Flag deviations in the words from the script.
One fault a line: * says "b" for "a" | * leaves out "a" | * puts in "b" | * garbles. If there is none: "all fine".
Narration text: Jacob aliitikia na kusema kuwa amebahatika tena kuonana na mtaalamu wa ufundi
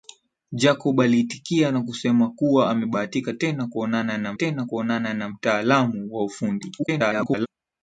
* puts in "tena kuonana na"
* garbles